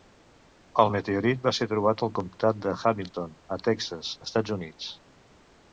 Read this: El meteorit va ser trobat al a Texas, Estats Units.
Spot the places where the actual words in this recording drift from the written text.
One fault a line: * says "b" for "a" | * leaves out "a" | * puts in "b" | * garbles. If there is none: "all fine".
* puts in "comtat de Hamilton"